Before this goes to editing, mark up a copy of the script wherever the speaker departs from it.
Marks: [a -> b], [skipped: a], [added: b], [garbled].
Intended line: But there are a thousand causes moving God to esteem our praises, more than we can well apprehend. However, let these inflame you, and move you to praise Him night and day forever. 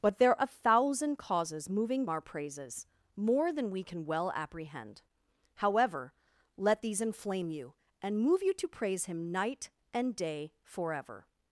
But there [skipped: are] a thousand causes moving [skipped: God to esteem] our praises, more than we can well apprehend. However, let these inflame you, and move you to praise Him night and day forever.